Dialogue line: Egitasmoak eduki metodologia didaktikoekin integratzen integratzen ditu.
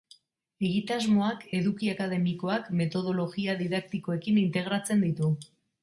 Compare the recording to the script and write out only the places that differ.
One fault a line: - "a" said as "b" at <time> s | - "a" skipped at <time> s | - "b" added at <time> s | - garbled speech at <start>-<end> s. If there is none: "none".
- "akademikoak" added at 1.9 s
- "integratzen" skipped at 5.1 s